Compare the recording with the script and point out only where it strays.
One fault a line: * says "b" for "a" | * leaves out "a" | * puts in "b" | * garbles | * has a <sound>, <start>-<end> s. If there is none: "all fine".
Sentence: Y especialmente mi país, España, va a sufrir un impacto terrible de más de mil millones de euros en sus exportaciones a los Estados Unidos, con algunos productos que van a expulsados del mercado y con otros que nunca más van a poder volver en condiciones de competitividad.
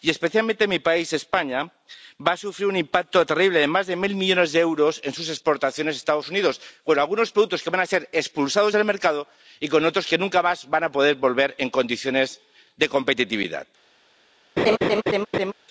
* puts in "ser"
* has a laugh, 14.6-15.5 s